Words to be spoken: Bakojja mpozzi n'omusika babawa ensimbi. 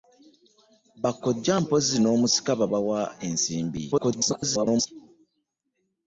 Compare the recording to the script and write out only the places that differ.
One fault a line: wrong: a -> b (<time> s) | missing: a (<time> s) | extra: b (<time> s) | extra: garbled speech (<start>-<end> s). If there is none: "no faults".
extra: garbled speech (3.9-4.9 s)